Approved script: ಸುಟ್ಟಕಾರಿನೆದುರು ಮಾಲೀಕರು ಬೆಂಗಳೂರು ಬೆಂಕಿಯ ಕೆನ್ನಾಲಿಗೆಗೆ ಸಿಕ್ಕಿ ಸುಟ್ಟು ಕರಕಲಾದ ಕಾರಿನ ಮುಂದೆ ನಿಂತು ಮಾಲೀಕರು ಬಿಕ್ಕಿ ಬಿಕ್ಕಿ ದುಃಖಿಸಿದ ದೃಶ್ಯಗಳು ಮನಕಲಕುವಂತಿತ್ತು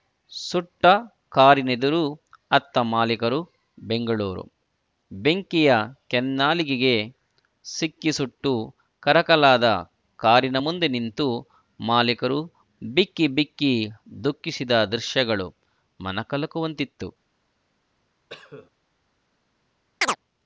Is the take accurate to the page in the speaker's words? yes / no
no